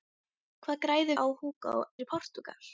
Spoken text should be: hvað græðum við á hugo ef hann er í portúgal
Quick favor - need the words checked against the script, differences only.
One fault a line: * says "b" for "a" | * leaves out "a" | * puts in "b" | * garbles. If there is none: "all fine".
* leaves out "við"
* leaves out "ef hann"